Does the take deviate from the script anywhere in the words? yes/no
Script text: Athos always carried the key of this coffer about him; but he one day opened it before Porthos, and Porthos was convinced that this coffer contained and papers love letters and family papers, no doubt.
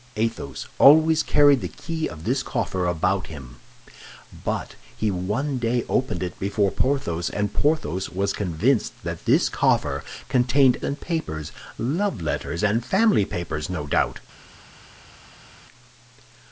no